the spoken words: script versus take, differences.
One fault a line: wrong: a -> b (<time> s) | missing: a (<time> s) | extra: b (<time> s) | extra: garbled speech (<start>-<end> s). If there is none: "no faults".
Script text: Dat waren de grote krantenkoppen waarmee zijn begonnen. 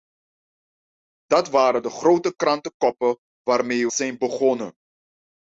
no faults